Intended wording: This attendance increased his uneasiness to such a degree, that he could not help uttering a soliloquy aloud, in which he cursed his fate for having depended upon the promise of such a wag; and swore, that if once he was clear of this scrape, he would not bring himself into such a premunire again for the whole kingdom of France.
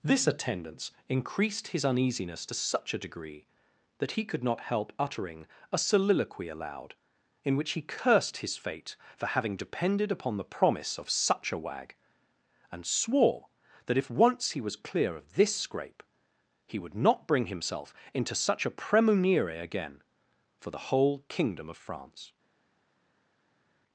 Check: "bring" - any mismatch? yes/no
no